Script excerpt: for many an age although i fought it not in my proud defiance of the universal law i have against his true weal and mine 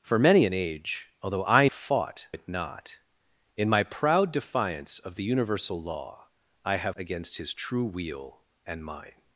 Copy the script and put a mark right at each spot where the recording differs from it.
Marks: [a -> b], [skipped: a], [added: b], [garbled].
for many an age although i fought it not in my proud defiance of the universal law i have against his true weal and mine